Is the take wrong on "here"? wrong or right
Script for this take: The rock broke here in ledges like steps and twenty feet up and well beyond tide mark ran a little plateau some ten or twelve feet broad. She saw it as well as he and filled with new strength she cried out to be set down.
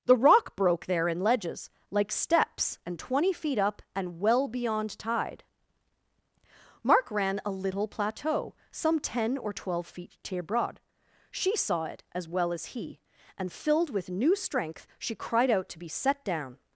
wrong